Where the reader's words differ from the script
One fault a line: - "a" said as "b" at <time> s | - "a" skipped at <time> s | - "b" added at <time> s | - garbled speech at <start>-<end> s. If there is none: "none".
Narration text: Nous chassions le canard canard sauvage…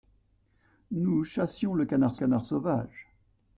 none